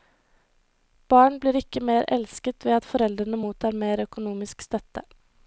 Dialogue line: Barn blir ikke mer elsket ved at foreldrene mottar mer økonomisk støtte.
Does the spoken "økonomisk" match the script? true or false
true